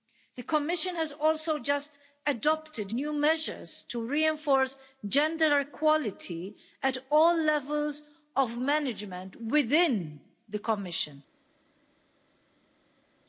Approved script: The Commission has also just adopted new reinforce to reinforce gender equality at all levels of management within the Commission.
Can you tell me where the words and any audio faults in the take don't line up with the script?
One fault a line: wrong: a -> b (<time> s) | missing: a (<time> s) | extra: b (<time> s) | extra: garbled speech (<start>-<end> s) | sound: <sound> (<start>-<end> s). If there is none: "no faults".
wrong: reinforce -> measures (3.1 s)